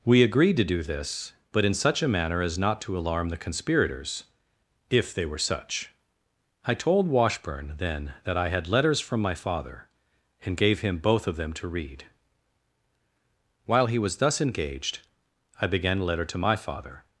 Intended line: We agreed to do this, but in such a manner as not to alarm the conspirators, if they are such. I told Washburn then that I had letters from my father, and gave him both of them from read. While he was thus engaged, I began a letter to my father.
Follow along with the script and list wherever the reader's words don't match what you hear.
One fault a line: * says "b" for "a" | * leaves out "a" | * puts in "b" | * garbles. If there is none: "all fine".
* says "were" for "are"
* says "to" for "from"